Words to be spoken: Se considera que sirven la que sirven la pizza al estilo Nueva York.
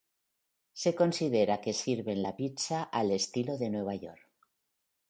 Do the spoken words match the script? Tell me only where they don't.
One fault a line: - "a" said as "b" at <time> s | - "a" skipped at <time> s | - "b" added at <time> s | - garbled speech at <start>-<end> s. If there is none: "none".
- "que sirven la" skipped at 2.4 s
- "de" added at 3.6 s